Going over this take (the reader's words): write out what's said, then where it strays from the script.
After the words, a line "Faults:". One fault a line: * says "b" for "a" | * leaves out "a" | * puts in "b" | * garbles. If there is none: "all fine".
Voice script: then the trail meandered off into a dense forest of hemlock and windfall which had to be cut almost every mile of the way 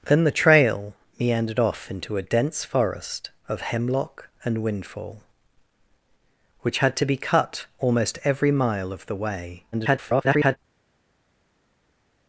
then the trail meandered off into a dense forest of hemlock and windfall which had to be cut almost every mile of the way [garbled]
Faults:
* garbles